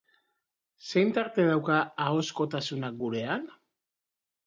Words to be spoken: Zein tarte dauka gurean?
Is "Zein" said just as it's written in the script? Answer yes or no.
yes